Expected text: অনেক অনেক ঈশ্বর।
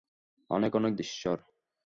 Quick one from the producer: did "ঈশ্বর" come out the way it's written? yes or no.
yes